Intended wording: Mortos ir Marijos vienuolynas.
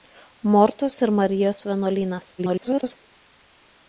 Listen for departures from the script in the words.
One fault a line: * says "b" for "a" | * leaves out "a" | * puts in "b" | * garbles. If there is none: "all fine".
* garbles